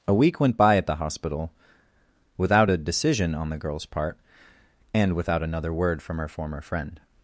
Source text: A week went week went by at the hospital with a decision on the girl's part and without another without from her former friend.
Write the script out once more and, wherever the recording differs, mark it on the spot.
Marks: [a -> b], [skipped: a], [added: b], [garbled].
A week went [skipped: week went] by at the hospital [with -> without] a decision on the girl's part and without another [without -> word] from her former friend.